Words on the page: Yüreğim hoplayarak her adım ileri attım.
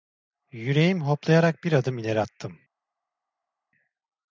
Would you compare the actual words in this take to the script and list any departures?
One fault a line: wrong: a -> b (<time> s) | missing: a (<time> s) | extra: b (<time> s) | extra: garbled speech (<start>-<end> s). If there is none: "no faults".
wrong: her -> bir (1.6 s)